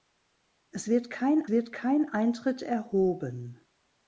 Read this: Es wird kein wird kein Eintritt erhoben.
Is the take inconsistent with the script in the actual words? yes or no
no